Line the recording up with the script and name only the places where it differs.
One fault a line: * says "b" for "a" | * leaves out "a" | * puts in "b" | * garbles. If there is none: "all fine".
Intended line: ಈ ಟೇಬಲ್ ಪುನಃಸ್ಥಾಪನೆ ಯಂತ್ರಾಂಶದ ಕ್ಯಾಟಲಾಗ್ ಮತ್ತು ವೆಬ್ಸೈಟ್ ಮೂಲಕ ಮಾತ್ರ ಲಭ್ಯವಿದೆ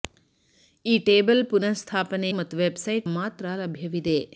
* leaves out "ಯಂತ್ರಾಂಶದ ಕ್ಯಾಟಲಾಗ್"
* leaves out "ಮೂಲಕ"